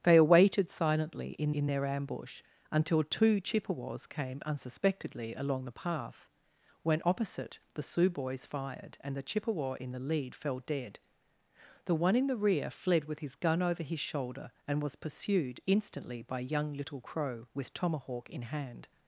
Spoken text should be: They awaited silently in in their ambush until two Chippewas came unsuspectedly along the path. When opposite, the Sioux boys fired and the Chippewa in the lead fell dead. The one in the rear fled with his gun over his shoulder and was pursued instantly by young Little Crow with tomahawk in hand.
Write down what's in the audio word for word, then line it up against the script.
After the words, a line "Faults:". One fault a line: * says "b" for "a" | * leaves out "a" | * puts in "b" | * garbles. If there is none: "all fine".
They awaited silently in in their ambush until two Chippewas came unsuspectedly along the path. When opposite, the Sioux boys fired and the Chippewa in the lead fell dead. The one in the rear fled with his gun over his shoulder and was pursued instantly by young Little Crow with tomahawk in hand.
Faults:
all fine